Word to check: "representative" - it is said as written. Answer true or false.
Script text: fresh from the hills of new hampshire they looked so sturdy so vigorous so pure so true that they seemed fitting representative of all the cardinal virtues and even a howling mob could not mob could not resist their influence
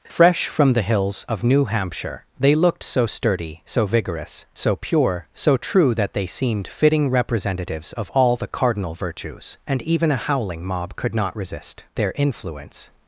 false